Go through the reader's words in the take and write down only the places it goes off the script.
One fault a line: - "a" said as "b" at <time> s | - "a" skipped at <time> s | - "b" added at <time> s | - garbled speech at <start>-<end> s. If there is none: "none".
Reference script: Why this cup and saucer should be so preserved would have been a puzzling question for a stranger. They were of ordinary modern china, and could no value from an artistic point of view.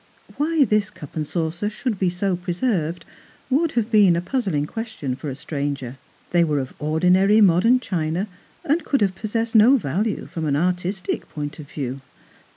- "have possessed" added at 9.0 s